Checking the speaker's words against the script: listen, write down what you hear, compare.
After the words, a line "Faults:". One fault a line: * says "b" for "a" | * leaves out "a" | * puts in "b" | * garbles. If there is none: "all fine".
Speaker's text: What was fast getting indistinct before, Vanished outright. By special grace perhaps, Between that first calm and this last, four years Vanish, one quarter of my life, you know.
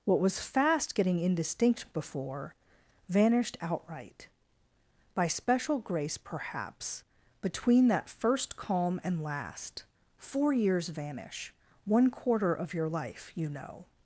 What was fast getting indistinct before, Vanished outright. By special grace perhaps, Between that first calm and last, four years Vanish, one quarter of your life, you know.
Faults:
* leaves out "this"
* says "your" for "my"